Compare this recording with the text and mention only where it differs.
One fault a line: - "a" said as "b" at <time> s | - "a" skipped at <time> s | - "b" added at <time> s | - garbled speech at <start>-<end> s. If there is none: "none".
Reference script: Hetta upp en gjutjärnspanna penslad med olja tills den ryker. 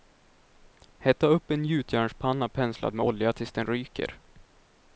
none